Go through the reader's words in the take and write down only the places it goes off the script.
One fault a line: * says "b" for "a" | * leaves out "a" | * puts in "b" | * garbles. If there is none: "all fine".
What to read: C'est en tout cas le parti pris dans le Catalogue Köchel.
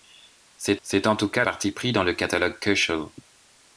* puts in "c'est"
* leaves out "le"